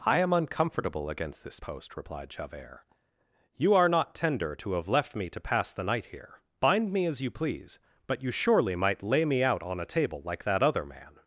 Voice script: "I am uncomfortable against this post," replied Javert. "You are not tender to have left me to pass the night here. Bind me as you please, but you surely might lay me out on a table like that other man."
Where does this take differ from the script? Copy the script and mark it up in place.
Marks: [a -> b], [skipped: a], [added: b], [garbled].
"I am uncomfortable against this post," replied Javert. "You are not tender to have left me to pass the night here. Bind me as you please, but you surely might lay me out on a table like that other man."